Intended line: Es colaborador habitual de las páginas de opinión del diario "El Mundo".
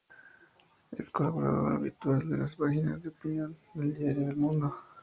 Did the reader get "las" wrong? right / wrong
right